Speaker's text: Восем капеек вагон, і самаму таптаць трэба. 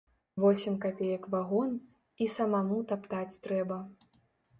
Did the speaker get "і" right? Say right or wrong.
right